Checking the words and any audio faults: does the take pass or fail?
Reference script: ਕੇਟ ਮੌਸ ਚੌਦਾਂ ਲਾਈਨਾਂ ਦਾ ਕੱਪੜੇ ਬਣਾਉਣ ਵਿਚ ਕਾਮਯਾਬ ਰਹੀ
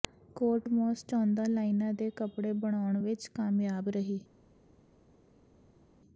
fail